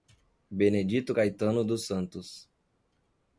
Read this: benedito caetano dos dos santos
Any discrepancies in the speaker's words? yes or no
yes